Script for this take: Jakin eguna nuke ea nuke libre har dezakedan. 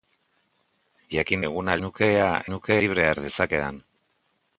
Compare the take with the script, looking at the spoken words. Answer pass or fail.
pass